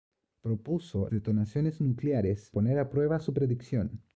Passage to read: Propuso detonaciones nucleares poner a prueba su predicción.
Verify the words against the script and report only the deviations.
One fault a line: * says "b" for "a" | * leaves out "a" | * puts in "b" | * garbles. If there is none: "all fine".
all fine